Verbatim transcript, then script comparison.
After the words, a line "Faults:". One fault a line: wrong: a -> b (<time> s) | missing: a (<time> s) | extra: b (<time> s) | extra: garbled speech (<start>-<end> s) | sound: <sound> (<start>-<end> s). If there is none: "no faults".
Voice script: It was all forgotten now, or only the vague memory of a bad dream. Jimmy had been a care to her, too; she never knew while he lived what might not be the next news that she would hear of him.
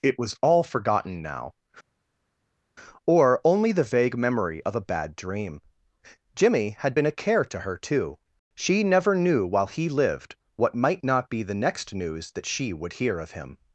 It was all forgotten now, or only the vague memory of a bad dream. Jimmy had been a care to her, too; she never knew while he lived what might not be the next news that she would hear of him.
Faults:
no faults